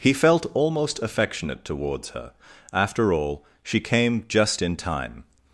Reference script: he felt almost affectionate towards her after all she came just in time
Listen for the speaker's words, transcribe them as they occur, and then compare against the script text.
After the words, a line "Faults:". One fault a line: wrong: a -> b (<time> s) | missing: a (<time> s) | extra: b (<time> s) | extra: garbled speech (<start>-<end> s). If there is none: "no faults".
he felt almost affectionate towards her after all she came just in time
Faults:
no faults